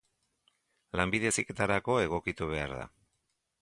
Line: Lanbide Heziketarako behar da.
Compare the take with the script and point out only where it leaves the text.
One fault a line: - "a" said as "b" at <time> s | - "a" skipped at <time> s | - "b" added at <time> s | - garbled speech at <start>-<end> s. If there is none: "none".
- "egokitu" added at 2.1 s